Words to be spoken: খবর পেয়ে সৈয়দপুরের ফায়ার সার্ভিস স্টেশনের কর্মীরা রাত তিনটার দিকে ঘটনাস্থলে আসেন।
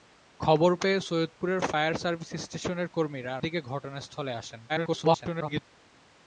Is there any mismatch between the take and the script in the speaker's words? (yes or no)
yes